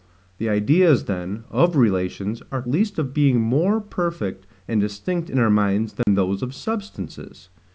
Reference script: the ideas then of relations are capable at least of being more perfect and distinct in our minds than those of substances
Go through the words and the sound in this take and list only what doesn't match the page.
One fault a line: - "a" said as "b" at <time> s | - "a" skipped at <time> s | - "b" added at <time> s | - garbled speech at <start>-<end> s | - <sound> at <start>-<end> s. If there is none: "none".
- "capable at" skipped at 2.6 s
- dropout at 6.0-6.1 s